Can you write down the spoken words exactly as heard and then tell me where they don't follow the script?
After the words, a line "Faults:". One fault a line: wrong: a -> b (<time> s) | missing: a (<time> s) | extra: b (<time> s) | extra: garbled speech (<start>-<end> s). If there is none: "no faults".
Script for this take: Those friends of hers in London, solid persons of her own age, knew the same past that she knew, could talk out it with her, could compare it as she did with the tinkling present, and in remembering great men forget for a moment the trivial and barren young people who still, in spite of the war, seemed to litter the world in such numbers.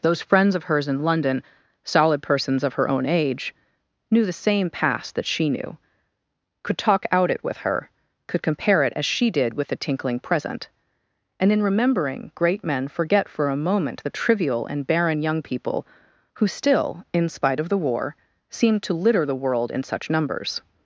Those friends of hers in London, solid persons of her own age, knew the same past that she knew, could talk out it with her, could compare it as she did with the tinkling present, and in remembering great men forget for a moment the trivial and barren young people who still, in spite of the war, seemed to litter the world in such numbers.
Faults:
no faults